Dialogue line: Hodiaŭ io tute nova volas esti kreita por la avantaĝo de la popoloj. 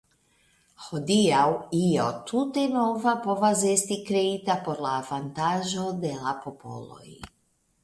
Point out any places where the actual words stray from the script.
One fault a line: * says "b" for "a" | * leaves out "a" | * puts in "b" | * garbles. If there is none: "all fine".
* says "povas" for "volas"